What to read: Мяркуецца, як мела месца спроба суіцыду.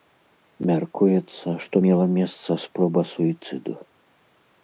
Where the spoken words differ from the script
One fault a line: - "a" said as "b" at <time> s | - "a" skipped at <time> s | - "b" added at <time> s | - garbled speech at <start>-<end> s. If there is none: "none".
- "як" said as "што" at 1.6 s